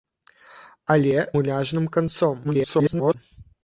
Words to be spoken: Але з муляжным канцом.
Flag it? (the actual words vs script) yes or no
yes